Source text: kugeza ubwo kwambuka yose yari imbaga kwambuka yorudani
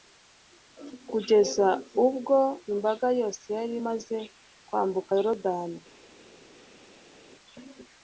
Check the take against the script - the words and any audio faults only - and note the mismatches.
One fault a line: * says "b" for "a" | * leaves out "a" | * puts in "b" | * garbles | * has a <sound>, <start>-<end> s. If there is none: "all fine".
* says "imbaga" for "kwambuka"
* says "imaze" for "imbaga"